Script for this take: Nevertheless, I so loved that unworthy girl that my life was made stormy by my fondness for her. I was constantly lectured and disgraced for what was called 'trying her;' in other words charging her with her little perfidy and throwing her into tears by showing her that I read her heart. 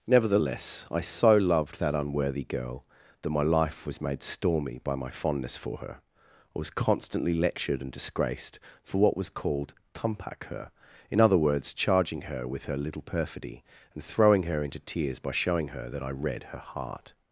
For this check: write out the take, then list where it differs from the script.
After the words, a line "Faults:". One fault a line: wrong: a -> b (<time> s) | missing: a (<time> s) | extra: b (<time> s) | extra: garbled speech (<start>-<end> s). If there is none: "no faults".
Nevertheless, I so loved that unworthy girl that my life was made stormy by my fondness for her. I was constantly lectured and disgraced for what was called 'tumpak her;' in other words charging her with her little perfidy and throwing her into tears by showing her that I read her heart.
Faults:
wrong: trying -> tumpak (9.9 s)